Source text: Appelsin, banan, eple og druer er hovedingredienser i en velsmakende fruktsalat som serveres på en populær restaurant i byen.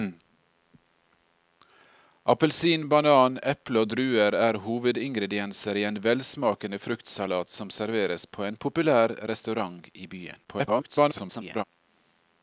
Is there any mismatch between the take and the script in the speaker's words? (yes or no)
yes